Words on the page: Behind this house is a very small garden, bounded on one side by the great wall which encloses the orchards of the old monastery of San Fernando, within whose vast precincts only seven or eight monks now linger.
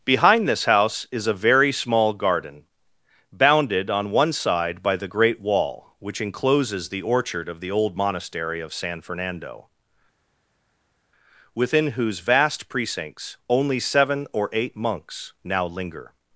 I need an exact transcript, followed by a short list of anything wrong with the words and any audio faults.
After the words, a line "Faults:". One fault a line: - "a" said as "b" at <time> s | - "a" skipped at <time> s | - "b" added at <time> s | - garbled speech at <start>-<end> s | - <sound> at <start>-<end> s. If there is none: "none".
Behind this house is a very small garden, bounded on one side by the great wall which encloses the orchard of the old monastery of San Fernando, within whose vast precincts only seven or eight monks now linger.
Faults:
- "orchards" said as "orchard" at 7.0 s